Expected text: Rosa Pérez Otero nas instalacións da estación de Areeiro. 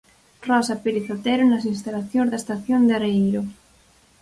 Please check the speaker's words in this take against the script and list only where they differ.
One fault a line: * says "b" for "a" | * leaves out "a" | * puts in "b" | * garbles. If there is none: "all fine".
all fine